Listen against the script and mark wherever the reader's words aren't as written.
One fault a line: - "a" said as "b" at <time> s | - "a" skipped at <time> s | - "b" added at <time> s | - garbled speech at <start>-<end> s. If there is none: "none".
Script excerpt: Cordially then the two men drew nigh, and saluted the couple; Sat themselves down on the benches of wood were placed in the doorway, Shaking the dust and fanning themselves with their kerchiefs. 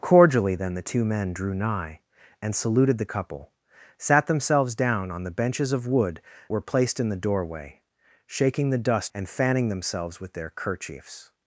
none